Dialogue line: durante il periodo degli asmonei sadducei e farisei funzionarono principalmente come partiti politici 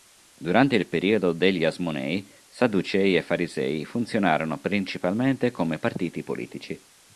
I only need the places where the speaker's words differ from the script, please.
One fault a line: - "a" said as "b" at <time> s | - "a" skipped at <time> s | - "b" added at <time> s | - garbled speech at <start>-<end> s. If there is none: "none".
none